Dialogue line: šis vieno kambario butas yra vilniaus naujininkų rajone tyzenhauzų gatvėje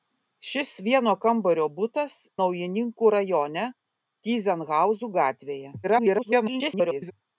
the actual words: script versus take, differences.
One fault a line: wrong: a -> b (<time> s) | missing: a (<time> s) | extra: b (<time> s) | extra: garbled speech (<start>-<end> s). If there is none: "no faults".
missing: yra vilniaus (2.1 s)
extra: garbled speech (5.8-7.1 s)